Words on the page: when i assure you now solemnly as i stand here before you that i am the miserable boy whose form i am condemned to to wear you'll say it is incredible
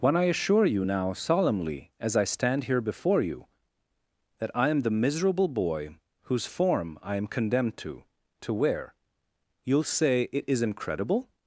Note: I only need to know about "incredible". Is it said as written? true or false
true